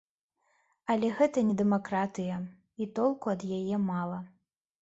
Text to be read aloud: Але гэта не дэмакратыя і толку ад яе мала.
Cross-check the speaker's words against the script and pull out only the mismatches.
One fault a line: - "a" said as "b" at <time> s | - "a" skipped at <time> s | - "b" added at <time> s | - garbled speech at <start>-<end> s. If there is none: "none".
none